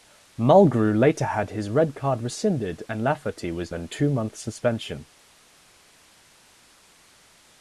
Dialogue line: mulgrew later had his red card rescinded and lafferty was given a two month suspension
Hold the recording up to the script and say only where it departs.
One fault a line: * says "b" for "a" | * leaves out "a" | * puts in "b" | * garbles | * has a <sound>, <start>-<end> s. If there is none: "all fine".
* leaves out "given"